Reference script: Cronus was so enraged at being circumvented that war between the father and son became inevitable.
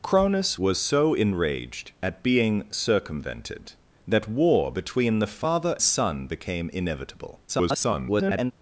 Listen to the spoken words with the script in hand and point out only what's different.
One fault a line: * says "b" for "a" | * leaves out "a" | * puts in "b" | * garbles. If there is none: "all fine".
* leaves out "and"
* garbles